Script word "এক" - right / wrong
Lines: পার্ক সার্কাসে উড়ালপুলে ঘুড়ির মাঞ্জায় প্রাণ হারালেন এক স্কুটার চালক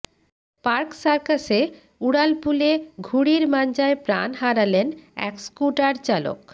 right